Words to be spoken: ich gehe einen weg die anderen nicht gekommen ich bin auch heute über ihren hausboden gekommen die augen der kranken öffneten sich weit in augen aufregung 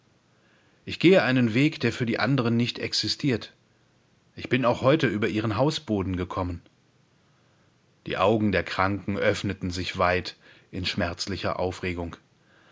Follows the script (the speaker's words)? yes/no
no